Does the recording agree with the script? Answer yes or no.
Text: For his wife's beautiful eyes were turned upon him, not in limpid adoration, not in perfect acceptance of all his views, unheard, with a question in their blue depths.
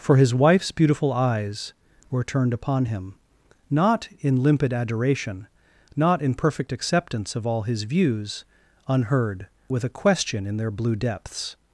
yes